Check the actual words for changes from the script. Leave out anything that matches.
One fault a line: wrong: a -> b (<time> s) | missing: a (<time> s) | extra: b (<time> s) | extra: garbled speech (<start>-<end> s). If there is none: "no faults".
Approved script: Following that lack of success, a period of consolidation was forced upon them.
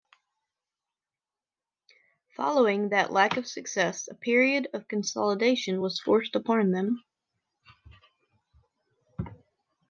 no faults